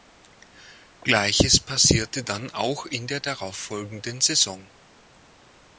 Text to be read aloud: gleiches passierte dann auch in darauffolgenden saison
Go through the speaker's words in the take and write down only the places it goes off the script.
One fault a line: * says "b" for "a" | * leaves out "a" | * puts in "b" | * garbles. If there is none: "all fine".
* puts in "der"